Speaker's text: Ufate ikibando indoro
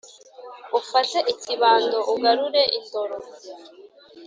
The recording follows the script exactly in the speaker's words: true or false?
false